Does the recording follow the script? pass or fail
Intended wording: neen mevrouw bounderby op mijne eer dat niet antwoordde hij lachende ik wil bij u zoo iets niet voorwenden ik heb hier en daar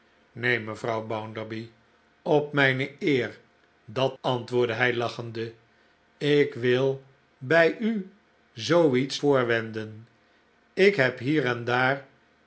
fail